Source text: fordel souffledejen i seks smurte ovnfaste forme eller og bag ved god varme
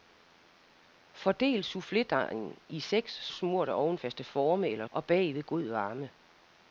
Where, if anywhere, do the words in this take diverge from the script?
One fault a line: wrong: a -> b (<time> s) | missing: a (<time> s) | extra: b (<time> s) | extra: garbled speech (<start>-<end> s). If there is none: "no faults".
no faults